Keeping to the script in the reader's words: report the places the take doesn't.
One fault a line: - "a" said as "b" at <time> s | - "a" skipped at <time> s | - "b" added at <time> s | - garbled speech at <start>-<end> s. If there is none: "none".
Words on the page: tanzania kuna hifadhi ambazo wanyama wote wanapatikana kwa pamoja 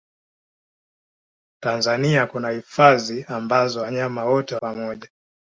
- "wanapatikana kwa" skipped at 4.6 s